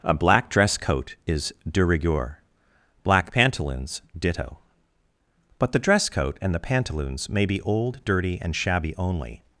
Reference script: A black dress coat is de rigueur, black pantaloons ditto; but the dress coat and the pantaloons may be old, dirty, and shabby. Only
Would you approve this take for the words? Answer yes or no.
yes